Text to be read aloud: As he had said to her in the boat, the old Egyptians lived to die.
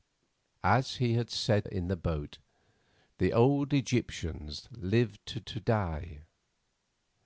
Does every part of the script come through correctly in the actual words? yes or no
no